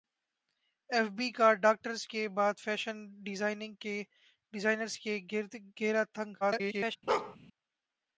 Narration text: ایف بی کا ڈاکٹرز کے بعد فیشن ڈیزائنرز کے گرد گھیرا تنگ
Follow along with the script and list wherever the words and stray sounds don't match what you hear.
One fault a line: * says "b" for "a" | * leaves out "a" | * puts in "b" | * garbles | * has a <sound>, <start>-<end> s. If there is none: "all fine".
* garbles
* has a bark, 7.1-7.4 s